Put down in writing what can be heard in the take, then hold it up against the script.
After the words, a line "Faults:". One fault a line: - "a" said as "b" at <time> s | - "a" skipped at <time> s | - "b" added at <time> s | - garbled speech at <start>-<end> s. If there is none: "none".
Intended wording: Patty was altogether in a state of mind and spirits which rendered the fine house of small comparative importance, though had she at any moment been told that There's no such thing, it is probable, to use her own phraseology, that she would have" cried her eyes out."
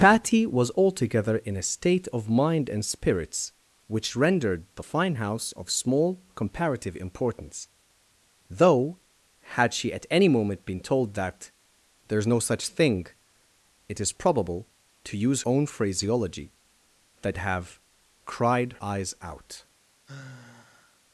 Patty was altogether in a state of mind and spirits which rendered the fine house of small comparative importance, though had she at any moment been told that There's no such thing, it is probable, to use own phraseology, that have" cried eyes out."
Faults:
- "her" skipped at 15.4 s
- "she would" skipped at 17.4 s
- "her" skipped at 18.7 s